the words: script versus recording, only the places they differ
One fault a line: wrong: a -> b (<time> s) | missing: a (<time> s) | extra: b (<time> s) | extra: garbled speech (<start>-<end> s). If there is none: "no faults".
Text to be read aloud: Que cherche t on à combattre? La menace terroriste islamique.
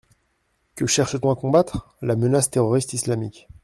no faults